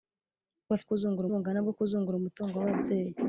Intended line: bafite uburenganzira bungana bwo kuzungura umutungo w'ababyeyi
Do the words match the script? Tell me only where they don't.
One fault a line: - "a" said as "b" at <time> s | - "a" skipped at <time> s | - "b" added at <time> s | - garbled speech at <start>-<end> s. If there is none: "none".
- "uburenganzira" said as "kuzungura" at 0.9 s